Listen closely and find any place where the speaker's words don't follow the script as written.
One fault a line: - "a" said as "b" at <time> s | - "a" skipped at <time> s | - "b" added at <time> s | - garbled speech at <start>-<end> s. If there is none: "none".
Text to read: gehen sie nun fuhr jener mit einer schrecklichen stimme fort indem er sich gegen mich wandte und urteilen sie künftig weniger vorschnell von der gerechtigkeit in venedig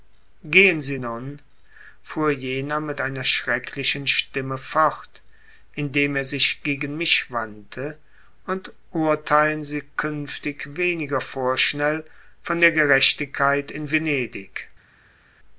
none